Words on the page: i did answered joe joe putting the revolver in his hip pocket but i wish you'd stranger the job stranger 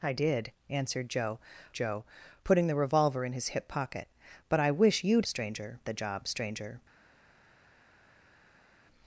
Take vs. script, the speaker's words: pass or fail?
pass